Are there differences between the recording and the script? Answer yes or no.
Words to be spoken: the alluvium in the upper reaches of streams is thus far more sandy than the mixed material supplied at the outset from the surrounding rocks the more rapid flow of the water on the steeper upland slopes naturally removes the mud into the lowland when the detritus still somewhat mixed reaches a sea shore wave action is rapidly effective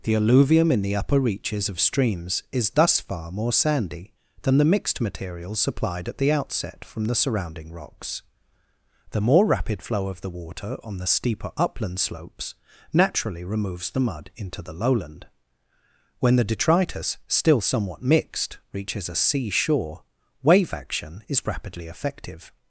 no